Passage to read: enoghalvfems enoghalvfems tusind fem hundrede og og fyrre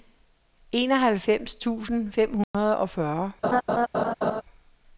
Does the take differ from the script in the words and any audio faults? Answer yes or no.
yes